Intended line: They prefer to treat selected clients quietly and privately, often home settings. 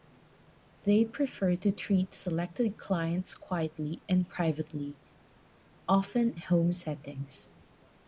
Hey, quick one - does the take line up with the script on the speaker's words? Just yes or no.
yes